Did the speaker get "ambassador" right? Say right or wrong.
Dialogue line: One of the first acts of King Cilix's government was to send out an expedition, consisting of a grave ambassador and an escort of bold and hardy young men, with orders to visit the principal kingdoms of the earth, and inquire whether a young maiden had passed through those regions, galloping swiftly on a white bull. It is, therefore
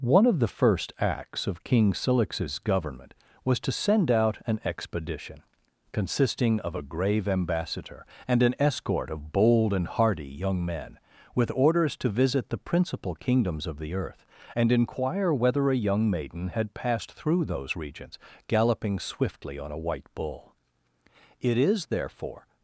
right